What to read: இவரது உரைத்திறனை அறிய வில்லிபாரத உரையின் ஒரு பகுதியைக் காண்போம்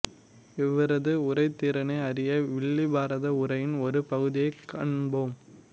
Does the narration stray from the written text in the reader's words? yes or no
no